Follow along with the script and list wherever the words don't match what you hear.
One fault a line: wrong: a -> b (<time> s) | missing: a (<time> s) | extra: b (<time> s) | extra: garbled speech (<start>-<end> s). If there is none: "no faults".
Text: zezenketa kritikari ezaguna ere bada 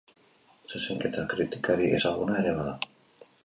no faults